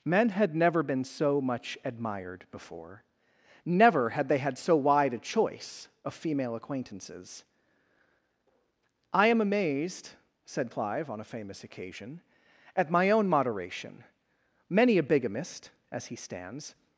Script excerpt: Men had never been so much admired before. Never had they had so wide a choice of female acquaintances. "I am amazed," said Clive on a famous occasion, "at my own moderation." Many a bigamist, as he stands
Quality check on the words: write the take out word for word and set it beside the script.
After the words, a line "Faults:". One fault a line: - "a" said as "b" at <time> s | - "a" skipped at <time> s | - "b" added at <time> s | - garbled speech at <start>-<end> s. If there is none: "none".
Men had never been so much admired before. Never had they had so wide a choice of female acquaintances. "I am amazed," said Clive on a famous occasion, "at my own moderation." Many a bigamist, as he stands
Faults:
none